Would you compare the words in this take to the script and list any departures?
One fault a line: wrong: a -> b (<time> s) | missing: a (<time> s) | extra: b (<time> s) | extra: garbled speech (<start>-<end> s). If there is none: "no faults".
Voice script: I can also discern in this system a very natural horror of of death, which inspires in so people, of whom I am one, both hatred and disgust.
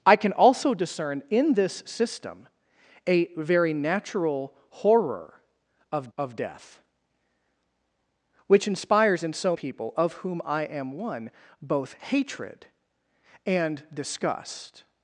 no faults